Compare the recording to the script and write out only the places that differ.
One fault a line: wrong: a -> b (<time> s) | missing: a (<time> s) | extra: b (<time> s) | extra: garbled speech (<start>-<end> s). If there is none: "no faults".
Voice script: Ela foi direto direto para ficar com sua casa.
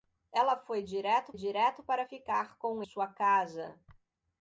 no faults